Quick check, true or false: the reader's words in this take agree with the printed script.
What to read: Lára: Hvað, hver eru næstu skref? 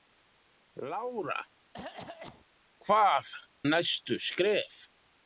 false